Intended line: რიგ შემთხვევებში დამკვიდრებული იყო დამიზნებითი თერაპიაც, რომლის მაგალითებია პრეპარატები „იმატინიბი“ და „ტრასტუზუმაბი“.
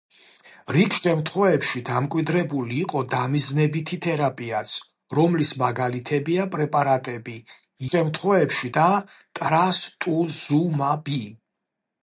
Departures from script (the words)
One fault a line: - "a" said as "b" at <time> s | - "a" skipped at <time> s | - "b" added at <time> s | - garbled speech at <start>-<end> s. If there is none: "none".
- "იმატინიბი" said as "შემთხვევებში" at 7.9 s